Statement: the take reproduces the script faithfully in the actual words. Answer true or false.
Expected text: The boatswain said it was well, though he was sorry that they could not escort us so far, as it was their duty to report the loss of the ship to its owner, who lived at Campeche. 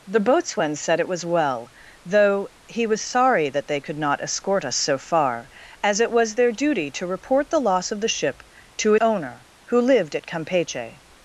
false